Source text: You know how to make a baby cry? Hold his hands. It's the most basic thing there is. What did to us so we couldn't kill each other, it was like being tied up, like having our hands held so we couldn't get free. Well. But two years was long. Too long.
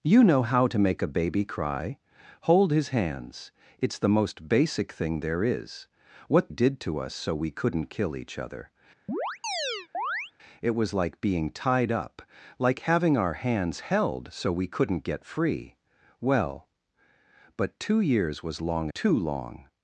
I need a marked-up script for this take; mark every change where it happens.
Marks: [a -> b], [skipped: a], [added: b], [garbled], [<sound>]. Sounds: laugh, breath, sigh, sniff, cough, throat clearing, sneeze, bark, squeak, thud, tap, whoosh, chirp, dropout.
You know how to make a baby cry? Hold his hands. It's the most basic thing there is. What did to us so we couldn't kill each other, [chirp] it was like being tied up, like having our hands held so we couldn't get free. Well. But two years was long. Too long.